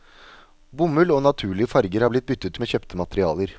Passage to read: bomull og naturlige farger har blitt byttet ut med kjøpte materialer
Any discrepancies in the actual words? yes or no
yes